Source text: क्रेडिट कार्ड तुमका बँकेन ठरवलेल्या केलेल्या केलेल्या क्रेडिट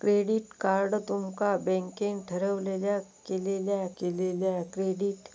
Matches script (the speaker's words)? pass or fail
pass